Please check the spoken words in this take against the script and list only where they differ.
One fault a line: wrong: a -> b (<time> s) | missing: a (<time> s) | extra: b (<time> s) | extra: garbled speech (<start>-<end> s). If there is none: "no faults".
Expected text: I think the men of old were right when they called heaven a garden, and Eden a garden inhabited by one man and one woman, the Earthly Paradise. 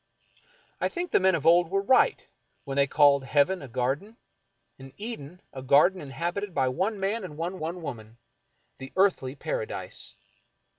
extra: one (7.6 s)